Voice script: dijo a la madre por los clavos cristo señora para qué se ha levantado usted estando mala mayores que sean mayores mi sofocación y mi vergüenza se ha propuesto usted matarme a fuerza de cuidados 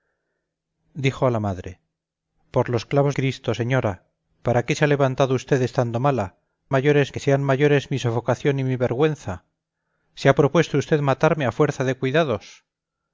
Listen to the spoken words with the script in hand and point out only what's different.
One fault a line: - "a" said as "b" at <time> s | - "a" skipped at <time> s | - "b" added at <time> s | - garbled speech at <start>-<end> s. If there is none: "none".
none